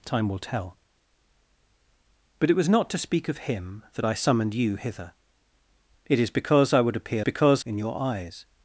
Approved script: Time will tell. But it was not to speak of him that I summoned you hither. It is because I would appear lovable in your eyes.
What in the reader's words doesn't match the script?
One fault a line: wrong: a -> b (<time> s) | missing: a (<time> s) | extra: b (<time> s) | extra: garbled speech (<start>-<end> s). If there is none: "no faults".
wrong: lovable -> because (7.2 s)